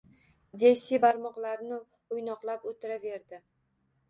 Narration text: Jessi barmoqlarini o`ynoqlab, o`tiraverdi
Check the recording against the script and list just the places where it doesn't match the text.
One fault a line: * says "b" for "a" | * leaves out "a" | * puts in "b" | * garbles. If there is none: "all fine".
all fine